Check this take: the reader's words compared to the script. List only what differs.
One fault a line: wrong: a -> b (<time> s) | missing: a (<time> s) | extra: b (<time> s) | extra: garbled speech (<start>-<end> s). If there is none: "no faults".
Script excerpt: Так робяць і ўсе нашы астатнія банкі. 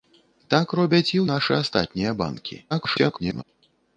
missing: ўсе (1.2 s)
extra: garbled speech (2.7-3.4 s)